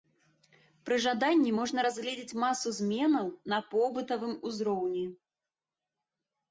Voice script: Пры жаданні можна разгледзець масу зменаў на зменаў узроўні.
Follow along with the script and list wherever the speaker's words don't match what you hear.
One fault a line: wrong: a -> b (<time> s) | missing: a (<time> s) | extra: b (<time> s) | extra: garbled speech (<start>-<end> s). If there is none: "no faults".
wrong: зменаў -> побытавым (3.7 s)